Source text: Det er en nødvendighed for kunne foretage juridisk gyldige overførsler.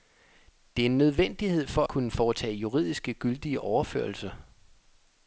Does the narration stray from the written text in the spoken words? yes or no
no